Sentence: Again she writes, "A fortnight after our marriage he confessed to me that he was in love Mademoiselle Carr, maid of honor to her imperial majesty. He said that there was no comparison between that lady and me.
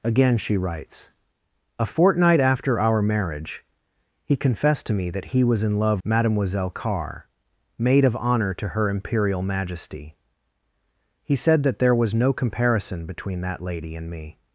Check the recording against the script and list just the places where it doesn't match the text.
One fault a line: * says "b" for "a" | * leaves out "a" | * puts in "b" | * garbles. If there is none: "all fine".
all fine